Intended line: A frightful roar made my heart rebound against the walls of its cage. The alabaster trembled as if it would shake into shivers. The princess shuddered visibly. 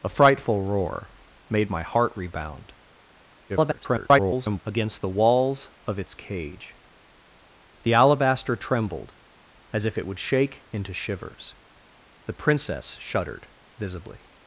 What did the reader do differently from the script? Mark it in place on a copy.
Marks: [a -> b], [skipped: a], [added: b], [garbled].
A frightful roar made my heart rebound [garbled] against the walls of its cage. The alabaster trembled as if it would shake into shivers. The princess shuddered visibly.